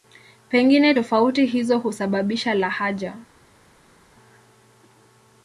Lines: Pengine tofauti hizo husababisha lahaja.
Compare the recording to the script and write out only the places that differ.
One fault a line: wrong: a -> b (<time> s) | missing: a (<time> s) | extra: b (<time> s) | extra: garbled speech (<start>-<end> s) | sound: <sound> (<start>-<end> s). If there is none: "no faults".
no faults